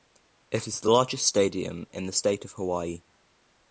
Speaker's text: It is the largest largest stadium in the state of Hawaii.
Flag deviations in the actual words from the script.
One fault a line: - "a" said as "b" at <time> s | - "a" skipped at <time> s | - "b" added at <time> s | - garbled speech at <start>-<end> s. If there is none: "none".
- "largest" skipped at 1.3 s